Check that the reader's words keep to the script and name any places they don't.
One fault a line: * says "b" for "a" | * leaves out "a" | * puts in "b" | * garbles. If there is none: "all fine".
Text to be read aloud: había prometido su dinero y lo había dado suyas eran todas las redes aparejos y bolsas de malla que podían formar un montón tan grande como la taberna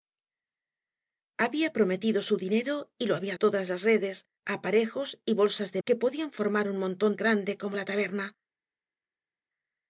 * leaves out "dado suyas eran"
* leaves out "malla"
* leaves out "tan"